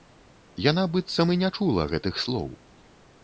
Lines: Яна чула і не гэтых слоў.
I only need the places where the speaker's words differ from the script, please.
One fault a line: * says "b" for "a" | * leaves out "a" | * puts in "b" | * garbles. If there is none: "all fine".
* says "быццам" for "чула"
* puts in "чула"